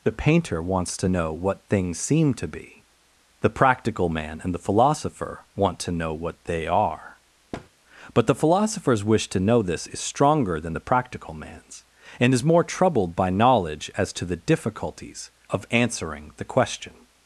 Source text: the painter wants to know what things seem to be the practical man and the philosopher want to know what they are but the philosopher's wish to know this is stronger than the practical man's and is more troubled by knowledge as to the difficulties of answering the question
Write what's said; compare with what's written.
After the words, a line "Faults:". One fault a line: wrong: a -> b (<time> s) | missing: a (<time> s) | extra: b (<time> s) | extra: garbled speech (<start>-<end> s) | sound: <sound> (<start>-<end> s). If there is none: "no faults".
the painter wants to know what things seem to be the practical man and the philosopher want to know what they are but the philosopher's wish to know this is stronger than the practical man's and is more troubled by knowledge as to the difficulties of answering the question
Faults:
sound: thud (7.5-7.7 s)